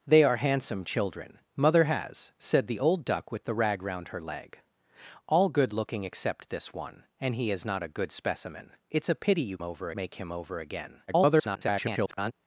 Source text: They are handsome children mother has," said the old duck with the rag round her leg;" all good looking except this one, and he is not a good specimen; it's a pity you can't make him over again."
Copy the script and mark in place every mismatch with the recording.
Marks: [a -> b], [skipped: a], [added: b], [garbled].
They are handsome children mother has," said the old duck with the rag round her leg;" all good looking except this one, and he is not a good specimen; it's a pity you [can't -> over] make him over again." [garbled]